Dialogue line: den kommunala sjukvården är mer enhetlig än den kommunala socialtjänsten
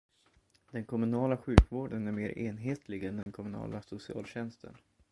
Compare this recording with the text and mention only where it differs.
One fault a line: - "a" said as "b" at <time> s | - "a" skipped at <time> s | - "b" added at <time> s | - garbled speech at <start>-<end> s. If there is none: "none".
none